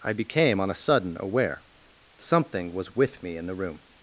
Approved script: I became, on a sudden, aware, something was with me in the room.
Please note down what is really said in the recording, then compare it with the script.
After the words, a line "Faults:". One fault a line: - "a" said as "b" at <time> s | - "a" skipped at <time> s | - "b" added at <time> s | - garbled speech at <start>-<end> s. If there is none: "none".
I became, on a sudden, aware, something was with me in the room.
Faults:
none